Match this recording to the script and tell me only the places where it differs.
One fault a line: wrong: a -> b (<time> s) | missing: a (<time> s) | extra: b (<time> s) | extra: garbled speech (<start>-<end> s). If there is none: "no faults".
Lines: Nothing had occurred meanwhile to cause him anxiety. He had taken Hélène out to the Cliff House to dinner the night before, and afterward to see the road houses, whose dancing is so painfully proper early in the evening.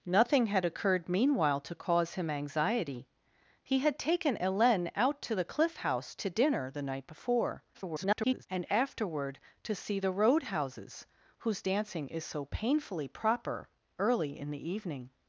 extra: garbled speech (7.7-8.5 s)